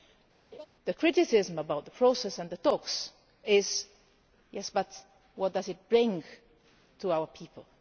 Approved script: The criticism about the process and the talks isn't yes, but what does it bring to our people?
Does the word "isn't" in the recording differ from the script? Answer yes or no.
yes